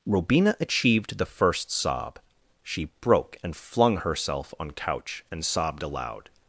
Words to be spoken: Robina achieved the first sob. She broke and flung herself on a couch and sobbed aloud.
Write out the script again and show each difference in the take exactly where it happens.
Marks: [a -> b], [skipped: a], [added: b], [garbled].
Robina achieved the first sob. She broke and flung herself on [skipped: a] couch and sobbed aloud.